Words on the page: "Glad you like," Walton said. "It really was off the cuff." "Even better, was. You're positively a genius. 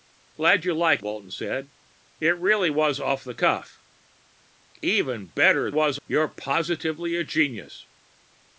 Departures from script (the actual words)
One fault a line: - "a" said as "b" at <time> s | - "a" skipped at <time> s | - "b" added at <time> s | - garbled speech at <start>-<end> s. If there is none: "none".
none